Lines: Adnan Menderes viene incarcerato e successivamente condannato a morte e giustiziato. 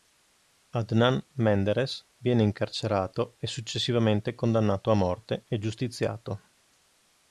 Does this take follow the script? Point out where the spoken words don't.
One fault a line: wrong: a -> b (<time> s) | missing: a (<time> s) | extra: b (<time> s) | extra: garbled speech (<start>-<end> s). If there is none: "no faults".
no faults